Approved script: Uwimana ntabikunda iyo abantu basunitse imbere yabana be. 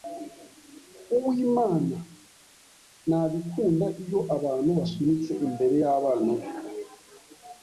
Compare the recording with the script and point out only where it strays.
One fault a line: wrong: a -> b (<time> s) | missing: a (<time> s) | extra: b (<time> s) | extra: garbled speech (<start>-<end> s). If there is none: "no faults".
no faults